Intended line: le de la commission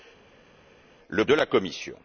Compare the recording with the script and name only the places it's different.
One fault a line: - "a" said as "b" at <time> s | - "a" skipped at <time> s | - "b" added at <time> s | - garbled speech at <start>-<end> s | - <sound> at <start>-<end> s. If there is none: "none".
none